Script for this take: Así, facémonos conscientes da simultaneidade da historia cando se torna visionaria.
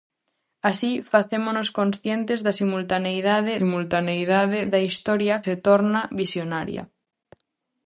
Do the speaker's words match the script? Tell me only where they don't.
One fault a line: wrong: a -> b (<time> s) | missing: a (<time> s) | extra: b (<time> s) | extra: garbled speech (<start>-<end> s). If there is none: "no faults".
extra: simultaneidade (3.6 s)
missing: cando (5.3 s)